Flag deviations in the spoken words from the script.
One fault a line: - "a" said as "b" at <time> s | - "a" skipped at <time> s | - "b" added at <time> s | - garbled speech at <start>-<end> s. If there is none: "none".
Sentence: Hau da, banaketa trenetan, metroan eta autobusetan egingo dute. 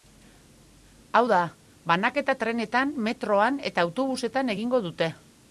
none